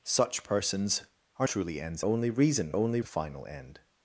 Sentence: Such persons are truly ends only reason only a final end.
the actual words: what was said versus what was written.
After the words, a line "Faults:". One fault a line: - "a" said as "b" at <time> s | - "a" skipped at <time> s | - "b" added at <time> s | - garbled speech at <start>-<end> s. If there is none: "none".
Such persons are truly ends only reason only a final end.
Faults:
none